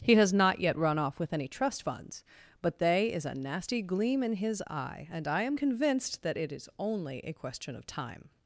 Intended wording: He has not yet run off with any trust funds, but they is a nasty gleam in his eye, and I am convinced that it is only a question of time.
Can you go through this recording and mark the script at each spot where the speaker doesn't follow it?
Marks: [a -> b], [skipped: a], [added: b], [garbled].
He has not yet run off with any trust funds, but they is a nasty gleam in his eye, and I am convinced that it is only a question of time.